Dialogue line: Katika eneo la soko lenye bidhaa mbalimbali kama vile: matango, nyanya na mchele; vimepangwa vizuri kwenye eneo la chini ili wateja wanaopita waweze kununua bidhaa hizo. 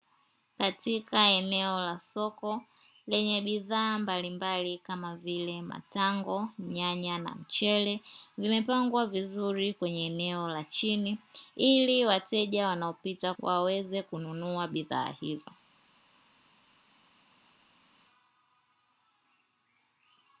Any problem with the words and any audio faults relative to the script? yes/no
no